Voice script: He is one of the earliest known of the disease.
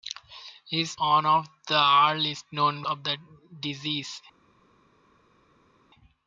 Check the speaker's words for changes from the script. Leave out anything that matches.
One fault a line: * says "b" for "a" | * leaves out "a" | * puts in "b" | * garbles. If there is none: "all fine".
all fine